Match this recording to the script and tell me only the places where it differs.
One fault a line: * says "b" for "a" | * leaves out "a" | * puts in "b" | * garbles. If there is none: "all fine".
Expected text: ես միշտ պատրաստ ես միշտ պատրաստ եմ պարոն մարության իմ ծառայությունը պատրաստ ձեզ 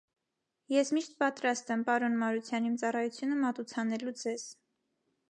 * leaves out "ես միշտ պատրաստ"
* says "մատուցանելու" for "պատրաստ"